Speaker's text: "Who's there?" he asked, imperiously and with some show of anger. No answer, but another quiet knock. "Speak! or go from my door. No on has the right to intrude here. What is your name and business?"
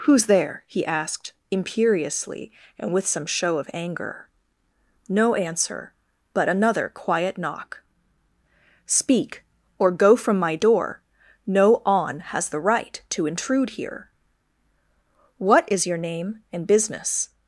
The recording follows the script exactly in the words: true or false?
true